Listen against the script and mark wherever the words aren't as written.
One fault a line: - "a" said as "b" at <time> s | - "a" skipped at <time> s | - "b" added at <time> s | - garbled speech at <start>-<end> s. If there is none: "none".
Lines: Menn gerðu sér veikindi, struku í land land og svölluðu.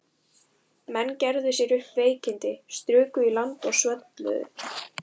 - "upp" added at 1.8 s
- "land" skipped at 3.7 s